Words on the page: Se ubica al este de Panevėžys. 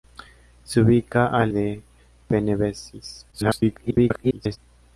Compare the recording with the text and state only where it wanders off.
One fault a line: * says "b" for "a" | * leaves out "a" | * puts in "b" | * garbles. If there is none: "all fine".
* leaves out "este"
* garbles